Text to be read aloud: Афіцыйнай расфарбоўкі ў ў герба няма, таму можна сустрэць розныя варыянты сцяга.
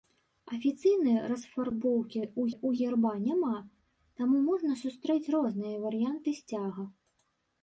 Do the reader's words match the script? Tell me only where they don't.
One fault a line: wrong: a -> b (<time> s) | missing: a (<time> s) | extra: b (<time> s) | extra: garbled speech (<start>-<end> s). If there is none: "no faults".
no faults